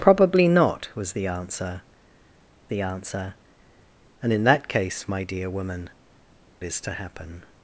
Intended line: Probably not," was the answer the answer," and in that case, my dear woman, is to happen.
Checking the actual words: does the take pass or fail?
pass